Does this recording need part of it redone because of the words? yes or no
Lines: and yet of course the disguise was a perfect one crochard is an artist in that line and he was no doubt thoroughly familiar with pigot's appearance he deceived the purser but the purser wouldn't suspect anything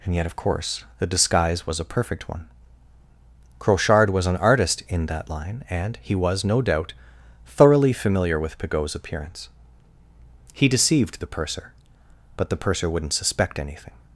yes